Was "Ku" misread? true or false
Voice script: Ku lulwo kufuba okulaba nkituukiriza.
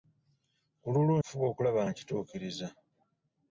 false